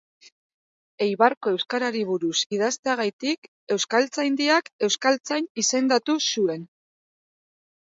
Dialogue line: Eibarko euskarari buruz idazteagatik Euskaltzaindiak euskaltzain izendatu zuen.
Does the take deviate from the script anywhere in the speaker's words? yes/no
no